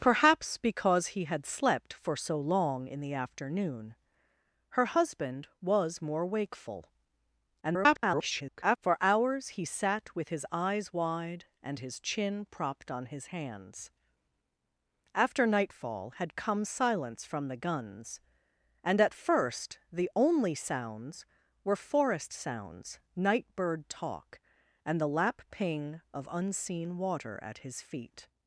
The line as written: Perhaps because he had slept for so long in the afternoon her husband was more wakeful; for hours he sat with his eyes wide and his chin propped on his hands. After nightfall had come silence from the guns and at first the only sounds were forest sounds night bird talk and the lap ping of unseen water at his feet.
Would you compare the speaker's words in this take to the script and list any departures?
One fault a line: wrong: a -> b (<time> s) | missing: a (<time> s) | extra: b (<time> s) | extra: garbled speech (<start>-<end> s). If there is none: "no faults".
extra: garbled speech (7.6-8.8 s)